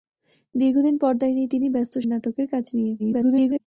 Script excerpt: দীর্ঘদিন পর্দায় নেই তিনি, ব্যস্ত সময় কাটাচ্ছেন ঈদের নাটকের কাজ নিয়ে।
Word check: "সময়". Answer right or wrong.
wrong